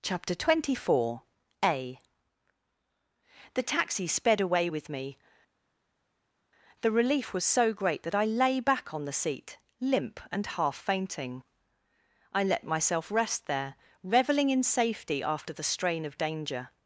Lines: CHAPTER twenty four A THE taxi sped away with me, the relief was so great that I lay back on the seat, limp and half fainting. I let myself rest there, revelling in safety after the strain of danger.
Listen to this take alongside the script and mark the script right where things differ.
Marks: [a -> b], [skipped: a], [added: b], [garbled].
CHAPTER twenty four A THE taxi sped away with me, the relief was so great that I lay back on the seat, limp and half fainting. I let myself rest there, revelling in safety after the strain of danger.